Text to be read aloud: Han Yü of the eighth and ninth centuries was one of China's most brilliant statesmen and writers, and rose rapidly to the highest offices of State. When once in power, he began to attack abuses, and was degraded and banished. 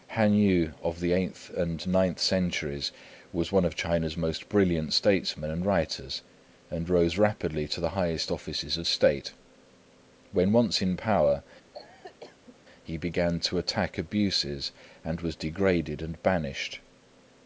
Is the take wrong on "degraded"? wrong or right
right